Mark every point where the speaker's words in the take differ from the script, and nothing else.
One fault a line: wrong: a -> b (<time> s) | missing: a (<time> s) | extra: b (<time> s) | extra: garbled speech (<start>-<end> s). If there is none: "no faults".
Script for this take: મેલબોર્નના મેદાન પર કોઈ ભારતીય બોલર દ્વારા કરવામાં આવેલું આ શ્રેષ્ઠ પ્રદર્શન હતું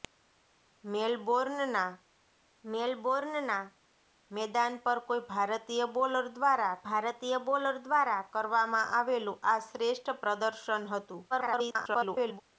extra: મેલબોર્નના (2.6 s)
extra: ભારતીય બોલર દ્વારા (6.8 s)
extra: garbled speech (11.3-12.4 s)